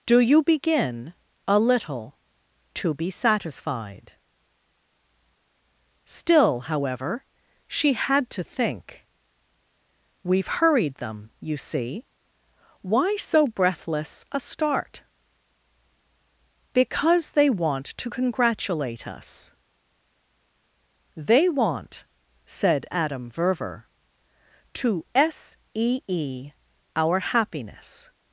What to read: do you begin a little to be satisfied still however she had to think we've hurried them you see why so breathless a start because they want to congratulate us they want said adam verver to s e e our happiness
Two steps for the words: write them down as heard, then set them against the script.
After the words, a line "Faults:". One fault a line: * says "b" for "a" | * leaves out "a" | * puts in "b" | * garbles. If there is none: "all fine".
do you begin a little to be satisfied still however she had to think we've hurried them you see why so breathless a start because they want to congratulate us they want said adam verver to s e e our happiness
Faults:
all fine